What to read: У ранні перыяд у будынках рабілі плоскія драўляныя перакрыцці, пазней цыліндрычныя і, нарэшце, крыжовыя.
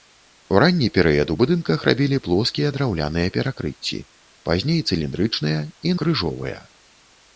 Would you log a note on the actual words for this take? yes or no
yes